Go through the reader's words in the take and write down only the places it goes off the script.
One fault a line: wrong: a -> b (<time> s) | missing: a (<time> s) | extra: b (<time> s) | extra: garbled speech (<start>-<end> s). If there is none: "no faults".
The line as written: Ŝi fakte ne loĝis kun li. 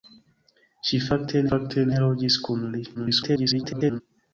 extra: fakte (1.5 s)
extra: garbled speech (2.9-4.0 s)